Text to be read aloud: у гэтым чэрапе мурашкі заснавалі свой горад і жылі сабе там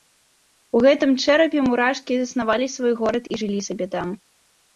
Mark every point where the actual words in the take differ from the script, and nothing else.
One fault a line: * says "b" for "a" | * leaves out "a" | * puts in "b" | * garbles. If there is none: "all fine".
all fine